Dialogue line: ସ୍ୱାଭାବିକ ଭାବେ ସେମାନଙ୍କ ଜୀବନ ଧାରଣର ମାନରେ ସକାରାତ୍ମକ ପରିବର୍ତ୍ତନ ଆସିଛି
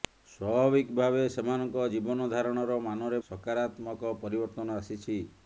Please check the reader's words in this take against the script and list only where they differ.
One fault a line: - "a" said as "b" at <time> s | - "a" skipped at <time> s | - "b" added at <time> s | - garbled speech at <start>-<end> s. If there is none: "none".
none